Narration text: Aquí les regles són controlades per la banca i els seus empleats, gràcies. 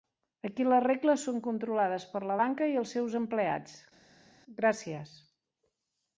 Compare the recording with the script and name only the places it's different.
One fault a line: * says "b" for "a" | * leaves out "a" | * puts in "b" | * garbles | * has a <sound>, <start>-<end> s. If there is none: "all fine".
all fine